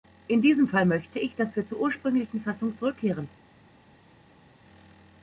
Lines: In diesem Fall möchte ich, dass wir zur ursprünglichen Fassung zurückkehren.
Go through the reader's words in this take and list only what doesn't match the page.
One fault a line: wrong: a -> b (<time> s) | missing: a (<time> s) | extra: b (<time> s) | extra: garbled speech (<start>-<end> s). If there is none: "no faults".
no faults